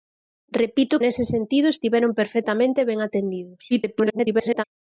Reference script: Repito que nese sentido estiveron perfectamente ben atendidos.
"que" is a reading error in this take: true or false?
true